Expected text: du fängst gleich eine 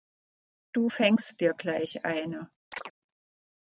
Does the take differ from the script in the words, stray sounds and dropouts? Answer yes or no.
yes